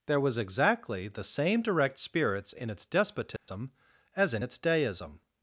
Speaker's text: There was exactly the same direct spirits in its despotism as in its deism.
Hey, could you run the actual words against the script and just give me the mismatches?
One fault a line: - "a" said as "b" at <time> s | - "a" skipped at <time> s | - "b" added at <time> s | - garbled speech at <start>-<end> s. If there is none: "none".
none